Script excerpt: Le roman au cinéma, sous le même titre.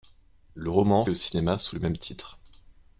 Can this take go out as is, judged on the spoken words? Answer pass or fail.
pass